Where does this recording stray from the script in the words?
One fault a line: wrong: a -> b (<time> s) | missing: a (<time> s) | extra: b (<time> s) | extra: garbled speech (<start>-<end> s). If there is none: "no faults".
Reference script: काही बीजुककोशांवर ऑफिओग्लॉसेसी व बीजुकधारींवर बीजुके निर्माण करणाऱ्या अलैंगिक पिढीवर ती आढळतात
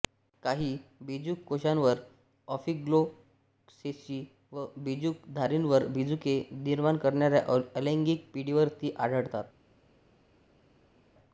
no faults